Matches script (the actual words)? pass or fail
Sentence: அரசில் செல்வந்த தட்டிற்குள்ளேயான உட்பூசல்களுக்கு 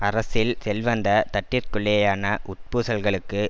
pass